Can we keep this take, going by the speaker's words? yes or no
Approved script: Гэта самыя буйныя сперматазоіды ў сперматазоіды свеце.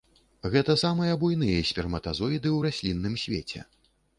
no